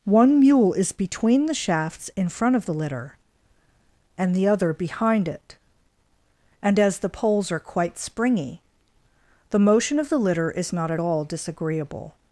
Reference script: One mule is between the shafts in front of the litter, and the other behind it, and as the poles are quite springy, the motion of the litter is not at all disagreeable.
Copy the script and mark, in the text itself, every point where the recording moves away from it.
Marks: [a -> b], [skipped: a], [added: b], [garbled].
One mule is between the shafts in front of the litter, and the other behind it, and as the poles are quite springy, the motion of the litter is not at all disagreeable.